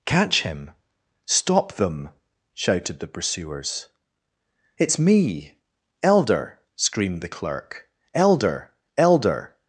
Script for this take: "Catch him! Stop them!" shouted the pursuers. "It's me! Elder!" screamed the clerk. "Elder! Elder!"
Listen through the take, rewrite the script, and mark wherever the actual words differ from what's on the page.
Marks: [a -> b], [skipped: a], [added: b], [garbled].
"Catch him! Stop them!" shouted the pursuers. "It's me! Elder!" screamed the clerk. "Elder! Elder!"